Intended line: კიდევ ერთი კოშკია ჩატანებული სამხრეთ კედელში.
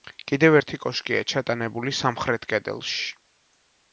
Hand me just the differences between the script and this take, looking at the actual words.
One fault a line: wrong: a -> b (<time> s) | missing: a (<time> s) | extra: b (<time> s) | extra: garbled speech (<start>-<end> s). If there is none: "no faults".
no faults